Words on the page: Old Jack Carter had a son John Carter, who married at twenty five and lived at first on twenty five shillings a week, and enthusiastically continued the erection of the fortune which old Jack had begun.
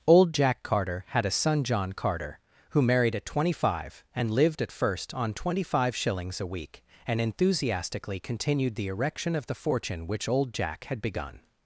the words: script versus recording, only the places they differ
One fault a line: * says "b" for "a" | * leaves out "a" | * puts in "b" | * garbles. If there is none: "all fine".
all fine